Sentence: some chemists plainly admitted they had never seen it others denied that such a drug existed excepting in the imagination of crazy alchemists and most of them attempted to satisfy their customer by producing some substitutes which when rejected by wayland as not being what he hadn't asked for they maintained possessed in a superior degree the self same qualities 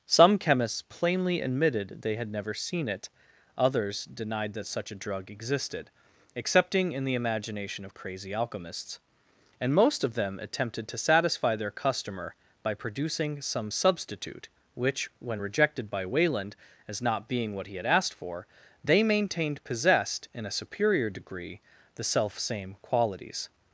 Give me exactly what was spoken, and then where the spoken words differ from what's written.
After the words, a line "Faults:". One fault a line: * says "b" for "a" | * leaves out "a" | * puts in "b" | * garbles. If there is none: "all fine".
some chemists plainly admitted they had never seen it others denied that such a drug existed excepting in the imagination of crazy alchemists and most of them attempted to satisfy their customer by producing some substitute which when rejected by wayland as not being what he had asked for they maintained possessed in a superior degree the self same qualities
Faults:
* says "substitute" for "substitutes"
* says "had" for "hadn't"